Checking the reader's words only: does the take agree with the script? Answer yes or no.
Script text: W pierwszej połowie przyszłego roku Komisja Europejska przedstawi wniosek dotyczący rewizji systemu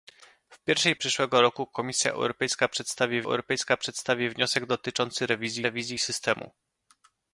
no